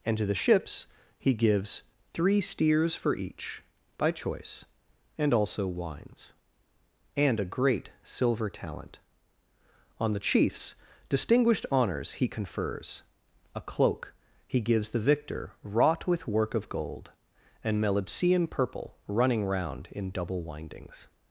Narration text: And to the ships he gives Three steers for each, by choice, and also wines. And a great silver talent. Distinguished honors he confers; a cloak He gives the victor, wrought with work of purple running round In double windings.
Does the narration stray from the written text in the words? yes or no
yes